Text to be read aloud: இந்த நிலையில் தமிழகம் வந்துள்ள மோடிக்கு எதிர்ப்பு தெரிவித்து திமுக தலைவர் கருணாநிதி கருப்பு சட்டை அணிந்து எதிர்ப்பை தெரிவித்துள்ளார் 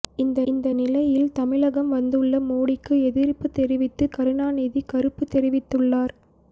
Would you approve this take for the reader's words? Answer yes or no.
no